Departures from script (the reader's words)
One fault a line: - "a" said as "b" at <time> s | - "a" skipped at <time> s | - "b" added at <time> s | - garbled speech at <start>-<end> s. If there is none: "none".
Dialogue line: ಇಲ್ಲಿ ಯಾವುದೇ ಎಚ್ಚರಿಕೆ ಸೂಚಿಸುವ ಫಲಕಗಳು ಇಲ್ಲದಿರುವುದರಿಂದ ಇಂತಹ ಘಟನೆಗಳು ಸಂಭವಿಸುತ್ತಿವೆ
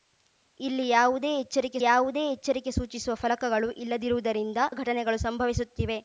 - "ಯಾವುದೇ ಎಚ್ಚರಿಕೆ" added at 1.8 s
- "ಇಂತಹ" skipped at 4.6 s